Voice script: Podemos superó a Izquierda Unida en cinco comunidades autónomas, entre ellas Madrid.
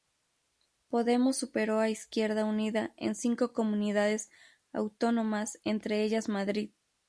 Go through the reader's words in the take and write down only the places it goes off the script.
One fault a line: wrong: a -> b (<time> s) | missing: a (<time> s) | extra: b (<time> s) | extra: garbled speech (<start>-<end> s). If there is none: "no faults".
no faults